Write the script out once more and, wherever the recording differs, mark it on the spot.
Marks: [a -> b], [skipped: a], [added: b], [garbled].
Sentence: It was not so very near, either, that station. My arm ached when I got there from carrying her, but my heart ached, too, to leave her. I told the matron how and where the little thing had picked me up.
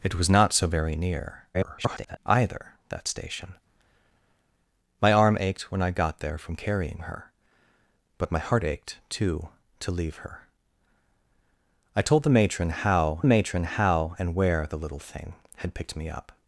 It was not so very near, [garbled] either, that station. My arm ached when I got there from carrying her, but my heart ached, too, to leave her. I told the matron how [added: matron how] and where the little thing had picked me up.